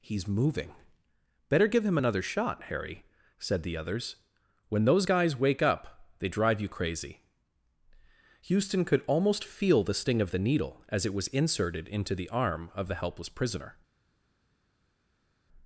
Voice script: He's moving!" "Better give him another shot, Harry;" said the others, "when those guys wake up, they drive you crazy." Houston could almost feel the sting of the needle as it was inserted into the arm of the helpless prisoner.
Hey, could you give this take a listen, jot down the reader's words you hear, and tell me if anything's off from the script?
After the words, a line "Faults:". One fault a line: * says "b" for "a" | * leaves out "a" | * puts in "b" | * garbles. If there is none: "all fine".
He's moving!" "Better give him another shot, Harry;" said the others, "when those guys wake up, they drive you crazy." Houston could almost feel the sting of the needle as it was inserted into the arm of the helpless prisoner.
Faults:
all fine